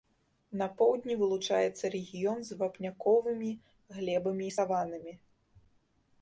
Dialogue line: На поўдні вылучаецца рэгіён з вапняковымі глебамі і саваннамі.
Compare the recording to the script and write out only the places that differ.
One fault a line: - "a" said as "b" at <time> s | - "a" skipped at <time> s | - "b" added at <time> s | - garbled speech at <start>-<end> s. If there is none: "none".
none